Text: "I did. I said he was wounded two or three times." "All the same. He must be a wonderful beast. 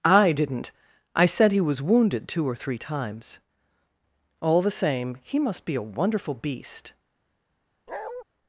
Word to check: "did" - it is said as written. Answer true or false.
false